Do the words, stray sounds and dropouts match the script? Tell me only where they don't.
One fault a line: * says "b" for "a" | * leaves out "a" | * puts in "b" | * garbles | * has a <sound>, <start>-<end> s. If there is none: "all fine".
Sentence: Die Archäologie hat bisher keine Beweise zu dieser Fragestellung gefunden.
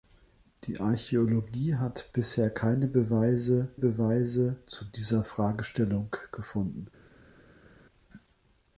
* puts in "Beweise"